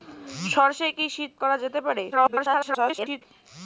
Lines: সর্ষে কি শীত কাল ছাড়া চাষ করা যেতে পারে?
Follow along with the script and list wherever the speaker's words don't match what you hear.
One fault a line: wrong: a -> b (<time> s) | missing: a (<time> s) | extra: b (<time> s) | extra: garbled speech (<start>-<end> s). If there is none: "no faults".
missing: কাল ছাড়া চাষ (1.3 s)
extra: garbled speech (2.1-3.2 s)